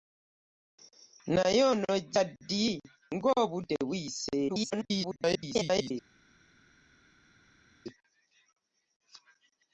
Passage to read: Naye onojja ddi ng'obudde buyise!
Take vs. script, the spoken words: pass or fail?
fail